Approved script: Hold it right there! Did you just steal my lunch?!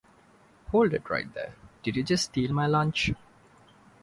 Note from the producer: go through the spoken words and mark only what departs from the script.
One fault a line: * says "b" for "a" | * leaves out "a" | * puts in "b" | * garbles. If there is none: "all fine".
all fine